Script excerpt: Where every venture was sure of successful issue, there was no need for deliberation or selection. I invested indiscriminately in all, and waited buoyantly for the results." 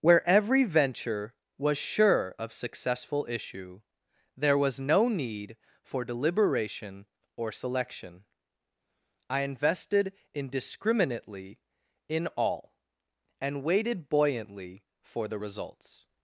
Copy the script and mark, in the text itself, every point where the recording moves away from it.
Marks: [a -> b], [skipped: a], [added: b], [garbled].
Where every venture was sure of successful issue, there was no need for deliberation or selection. I invested indiscriminately in all, and waited buoyantly for the results."